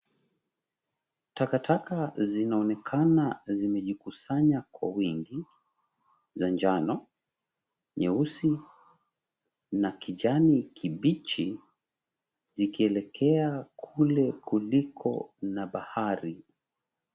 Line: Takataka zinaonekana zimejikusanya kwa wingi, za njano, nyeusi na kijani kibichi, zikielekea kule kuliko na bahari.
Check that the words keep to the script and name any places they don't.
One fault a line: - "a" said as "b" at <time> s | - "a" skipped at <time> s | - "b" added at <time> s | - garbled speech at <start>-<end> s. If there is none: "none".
none